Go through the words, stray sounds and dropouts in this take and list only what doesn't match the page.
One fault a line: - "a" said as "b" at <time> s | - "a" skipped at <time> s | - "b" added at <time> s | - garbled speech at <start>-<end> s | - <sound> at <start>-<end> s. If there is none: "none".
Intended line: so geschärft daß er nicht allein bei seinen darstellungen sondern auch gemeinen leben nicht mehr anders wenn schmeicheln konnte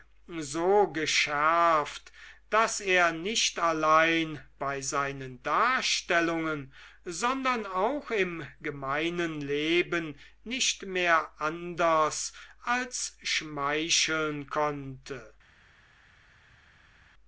- "im" added at 8.1 s
- "wenn" said as "als" at 12.6 s